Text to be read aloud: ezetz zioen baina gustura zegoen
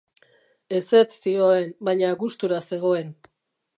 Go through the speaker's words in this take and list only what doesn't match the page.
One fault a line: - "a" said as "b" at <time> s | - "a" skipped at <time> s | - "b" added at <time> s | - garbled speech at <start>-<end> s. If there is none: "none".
none